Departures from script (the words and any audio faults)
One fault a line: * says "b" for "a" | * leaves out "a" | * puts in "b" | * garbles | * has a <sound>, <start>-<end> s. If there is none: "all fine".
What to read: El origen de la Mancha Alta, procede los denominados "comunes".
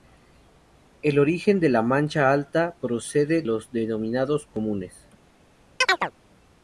* has a chirp, 5.8-6.1 s